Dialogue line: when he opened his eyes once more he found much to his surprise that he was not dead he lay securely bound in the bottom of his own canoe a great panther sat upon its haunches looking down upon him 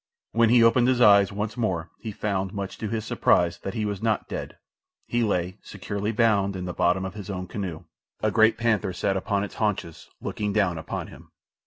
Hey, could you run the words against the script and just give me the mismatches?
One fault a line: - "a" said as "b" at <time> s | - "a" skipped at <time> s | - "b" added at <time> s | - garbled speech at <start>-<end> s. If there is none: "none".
none